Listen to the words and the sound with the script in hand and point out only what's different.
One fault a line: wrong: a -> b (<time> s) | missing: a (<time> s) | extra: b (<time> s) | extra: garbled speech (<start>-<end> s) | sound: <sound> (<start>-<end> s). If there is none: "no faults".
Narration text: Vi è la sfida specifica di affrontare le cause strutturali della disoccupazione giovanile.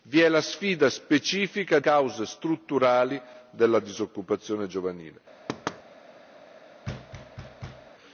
missing: di affrontare le (1.8 s)
sound: thud (5.5-5.8 s)
sound: thud (6.8-7.9 s)